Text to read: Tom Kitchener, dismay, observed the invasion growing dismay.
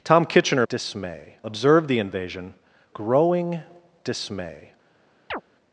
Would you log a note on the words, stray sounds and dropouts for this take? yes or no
yes